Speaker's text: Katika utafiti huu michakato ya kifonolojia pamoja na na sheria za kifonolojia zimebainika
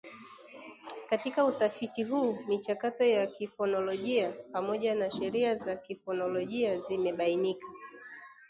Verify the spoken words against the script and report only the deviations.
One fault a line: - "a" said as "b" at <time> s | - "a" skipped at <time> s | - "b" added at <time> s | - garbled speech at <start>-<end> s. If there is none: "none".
- "na" skipped at 5.1 s